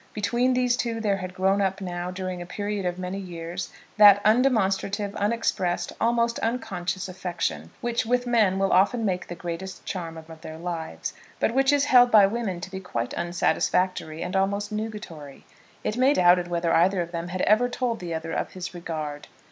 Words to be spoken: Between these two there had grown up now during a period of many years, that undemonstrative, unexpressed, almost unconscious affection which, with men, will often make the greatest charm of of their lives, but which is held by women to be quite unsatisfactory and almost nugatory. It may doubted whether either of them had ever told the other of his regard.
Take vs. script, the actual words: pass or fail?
pass